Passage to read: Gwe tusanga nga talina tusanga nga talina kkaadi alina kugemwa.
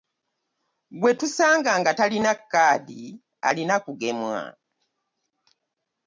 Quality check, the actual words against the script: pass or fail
fail